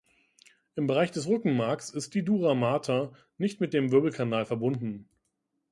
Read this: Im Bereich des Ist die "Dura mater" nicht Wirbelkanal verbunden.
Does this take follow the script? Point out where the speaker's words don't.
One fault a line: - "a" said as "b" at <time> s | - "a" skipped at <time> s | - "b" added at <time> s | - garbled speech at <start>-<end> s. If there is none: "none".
- "Rückenmarks" added at 1.3 s
- "mit dem" added at 3.6 s